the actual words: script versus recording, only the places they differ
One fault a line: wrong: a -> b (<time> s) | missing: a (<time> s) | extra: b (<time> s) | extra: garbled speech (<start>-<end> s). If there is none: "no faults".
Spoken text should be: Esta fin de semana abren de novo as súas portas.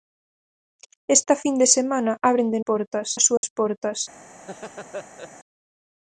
wrong: novo -> portas (2.7 s)